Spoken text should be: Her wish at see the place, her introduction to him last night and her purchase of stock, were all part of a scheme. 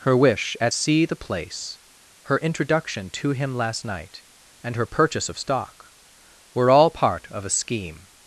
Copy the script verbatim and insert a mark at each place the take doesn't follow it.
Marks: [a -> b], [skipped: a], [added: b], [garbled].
Her wish at see the place, her introduction to him last night and her purchase of stock, were all part of a scheme.